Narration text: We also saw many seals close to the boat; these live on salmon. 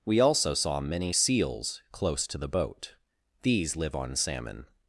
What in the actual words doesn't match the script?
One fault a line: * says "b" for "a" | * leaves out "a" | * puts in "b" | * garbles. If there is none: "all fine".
all fine